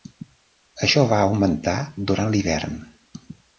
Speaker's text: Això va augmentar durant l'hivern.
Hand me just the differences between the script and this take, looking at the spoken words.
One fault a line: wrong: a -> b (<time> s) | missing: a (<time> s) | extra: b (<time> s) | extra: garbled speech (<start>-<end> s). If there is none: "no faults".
no faults